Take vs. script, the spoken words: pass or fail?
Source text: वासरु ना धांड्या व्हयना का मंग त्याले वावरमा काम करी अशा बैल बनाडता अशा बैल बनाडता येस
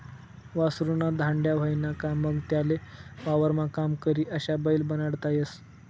fail